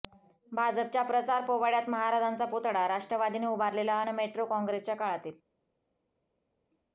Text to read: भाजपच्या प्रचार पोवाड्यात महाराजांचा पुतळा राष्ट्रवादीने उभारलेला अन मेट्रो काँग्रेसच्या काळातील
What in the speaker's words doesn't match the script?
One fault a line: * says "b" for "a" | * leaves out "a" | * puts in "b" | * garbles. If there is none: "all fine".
all fine